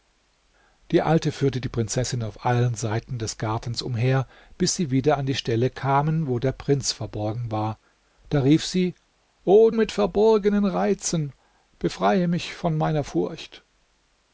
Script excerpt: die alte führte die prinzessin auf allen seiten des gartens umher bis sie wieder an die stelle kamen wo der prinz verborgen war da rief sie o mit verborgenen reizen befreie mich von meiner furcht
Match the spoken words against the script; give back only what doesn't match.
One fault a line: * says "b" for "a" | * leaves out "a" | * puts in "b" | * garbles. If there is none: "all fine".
all fine